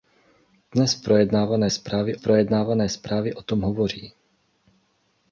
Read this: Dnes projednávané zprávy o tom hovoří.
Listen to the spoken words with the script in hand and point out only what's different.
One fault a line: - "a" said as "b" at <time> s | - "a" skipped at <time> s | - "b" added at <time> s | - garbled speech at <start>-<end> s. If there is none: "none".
- "projednávané zprávy" added at 2.1 s